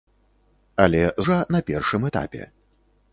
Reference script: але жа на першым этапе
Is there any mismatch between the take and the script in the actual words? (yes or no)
no